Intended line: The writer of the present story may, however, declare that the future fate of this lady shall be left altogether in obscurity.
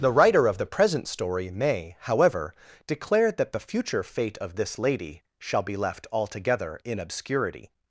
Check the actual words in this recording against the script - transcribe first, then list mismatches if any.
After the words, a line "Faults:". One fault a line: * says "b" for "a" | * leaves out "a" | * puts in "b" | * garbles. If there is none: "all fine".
The writer of the present story may, however, declare that the future fate of this lady shall be left altogether in obscurity.
Faults:
all fine